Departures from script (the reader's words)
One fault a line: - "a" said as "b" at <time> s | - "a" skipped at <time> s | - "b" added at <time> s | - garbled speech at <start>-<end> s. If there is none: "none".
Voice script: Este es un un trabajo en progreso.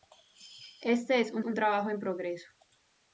none